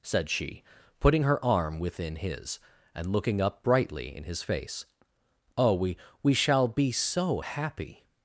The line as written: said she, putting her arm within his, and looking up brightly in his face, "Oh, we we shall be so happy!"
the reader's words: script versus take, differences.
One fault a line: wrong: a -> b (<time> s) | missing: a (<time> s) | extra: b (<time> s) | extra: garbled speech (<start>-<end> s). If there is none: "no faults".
no faults